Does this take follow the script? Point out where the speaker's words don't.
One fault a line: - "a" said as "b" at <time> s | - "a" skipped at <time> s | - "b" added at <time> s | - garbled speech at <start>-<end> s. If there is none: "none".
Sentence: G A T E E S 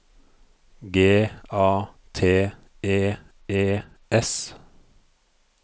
none